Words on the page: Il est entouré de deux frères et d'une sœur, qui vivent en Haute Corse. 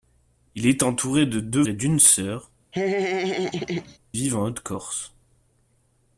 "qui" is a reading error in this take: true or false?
true